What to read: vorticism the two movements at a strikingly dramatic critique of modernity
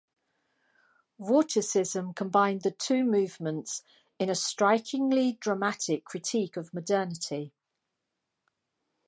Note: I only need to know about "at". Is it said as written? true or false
false